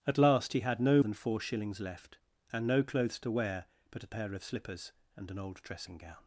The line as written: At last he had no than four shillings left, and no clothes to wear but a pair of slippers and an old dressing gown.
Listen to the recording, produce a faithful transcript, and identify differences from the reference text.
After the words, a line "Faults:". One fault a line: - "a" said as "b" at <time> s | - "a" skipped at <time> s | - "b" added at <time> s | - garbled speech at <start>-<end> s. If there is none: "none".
At last he had no than four shillings left, and no clothes to wear but a pair of slippers and an old dressing gown.
Faults:
none